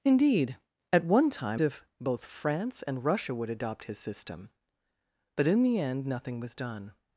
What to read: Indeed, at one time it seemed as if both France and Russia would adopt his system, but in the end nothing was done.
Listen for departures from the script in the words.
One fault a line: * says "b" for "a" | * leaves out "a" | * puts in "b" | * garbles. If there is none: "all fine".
* leaves out "it seemed as"